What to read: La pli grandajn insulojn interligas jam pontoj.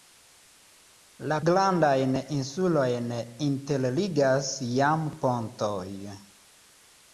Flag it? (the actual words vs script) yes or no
yes